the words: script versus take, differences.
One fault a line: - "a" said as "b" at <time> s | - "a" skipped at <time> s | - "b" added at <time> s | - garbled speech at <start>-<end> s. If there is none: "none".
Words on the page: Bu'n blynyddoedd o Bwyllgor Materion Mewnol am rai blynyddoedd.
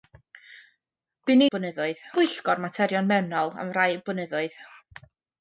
none